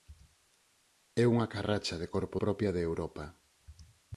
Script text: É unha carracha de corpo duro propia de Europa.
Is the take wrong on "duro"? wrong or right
wrong